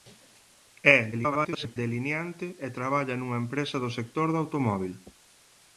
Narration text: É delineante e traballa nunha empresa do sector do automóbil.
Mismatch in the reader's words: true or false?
true